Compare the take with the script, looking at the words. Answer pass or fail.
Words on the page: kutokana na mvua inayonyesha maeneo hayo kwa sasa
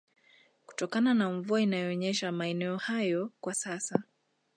pass